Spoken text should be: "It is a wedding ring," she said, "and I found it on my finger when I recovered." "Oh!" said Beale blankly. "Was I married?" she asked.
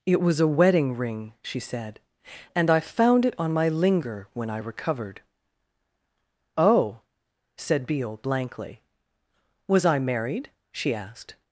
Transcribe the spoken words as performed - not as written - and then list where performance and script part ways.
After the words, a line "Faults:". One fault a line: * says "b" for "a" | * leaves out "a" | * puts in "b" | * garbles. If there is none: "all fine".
"It was a wedding ring," she said, "and I found it on my linger when I recovered." "Oh!" said Beale blankly. "Was I married?" she asked.
Faults:
* says "was" for "is"
* says "linger" for "finger"